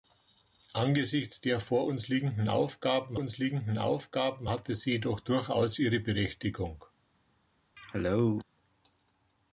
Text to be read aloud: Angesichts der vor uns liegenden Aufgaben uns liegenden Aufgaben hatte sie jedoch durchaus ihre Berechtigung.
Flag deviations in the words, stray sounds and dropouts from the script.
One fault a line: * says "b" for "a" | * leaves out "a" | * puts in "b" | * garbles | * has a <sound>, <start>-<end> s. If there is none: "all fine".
* has a cough, 7.8-8.4 s